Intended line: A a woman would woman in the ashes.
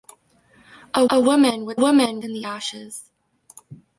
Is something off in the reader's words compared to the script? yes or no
no